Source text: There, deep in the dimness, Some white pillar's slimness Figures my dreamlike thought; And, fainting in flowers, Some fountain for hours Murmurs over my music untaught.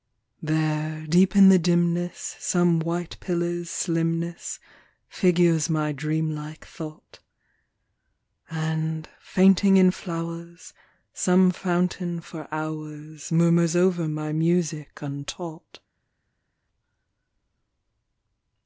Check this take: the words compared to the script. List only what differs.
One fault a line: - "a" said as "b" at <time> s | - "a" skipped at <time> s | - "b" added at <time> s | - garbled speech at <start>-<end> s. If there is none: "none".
none